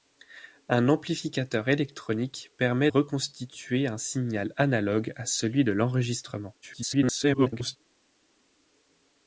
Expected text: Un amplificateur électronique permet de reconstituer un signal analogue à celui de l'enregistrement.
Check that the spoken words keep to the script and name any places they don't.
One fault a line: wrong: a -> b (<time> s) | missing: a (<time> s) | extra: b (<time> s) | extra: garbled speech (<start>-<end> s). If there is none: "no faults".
missing: de (2.9 s)
extra: garbled speech (6.6-7.8 s)